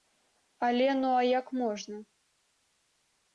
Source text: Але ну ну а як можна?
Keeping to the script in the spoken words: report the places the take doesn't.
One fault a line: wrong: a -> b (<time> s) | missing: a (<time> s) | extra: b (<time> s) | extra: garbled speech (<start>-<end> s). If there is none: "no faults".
missing: ну (1.1 s)